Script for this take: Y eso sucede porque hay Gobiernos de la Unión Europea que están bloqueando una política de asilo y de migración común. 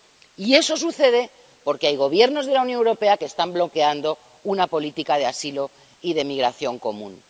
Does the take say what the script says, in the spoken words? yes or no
yes